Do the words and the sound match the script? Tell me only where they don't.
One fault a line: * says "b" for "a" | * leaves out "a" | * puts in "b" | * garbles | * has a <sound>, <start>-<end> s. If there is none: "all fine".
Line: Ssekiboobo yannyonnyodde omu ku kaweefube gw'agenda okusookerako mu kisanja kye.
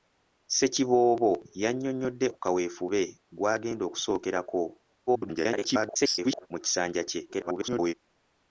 * leaves out "omu"
* garbles
* garbles